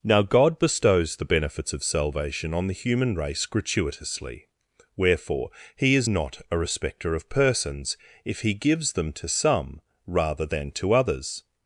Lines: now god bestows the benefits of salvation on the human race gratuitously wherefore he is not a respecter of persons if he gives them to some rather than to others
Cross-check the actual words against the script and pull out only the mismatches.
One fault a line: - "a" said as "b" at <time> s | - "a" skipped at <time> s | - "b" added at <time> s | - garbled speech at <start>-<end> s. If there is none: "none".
none